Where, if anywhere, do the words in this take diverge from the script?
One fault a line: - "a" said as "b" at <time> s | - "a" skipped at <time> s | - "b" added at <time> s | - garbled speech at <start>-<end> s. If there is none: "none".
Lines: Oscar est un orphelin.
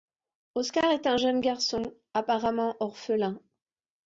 - "jeune garçon apparemment" added at 1.1 s